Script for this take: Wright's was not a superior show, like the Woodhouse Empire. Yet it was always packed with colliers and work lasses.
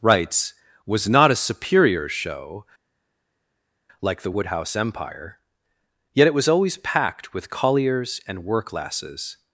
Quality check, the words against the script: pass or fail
pass